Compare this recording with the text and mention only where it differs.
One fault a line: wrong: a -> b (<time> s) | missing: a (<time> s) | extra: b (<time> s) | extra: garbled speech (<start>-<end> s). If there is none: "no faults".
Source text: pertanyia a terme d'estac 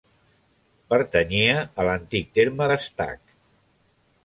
extra: l'antic (1.9 s)